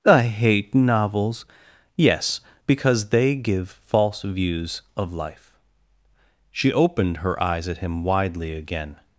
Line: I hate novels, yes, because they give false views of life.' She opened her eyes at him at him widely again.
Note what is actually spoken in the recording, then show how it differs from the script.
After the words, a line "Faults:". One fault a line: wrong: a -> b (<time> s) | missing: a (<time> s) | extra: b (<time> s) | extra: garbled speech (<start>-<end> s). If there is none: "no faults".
I hate novels, yes, because they give false views of life.' She opened her eyes at him widely again.
Faults:
missing: at him (8.0 s)